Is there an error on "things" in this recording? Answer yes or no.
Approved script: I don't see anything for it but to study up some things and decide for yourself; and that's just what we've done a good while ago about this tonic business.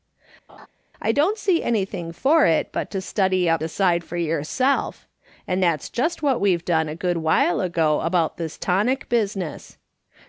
yes